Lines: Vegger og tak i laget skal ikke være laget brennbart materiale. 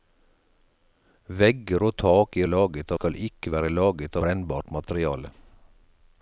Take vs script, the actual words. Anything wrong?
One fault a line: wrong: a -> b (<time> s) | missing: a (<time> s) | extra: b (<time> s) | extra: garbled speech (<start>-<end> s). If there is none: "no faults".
no faults